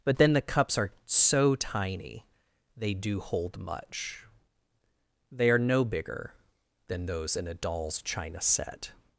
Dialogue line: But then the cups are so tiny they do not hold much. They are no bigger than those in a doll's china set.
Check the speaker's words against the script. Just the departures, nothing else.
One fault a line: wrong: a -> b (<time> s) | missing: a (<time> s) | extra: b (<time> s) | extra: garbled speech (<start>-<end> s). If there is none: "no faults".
missing: not (3.2 s)